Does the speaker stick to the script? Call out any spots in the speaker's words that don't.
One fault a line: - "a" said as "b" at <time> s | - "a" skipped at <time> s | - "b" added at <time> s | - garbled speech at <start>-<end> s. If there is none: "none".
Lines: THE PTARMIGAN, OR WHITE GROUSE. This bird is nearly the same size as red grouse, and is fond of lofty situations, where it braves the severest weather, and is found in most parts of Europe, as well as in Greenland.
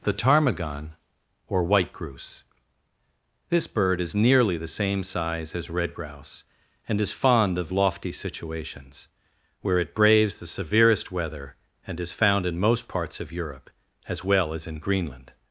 none